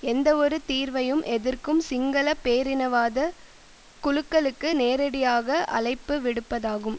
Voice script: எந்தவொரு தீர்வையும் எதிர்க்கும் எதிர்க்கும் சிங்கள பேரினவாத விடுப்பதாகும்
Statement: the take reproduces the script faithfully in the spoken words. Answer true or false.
false